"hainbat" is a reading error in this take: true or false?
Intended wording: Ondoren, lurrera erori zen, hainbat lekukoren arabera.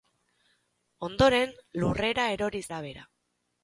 true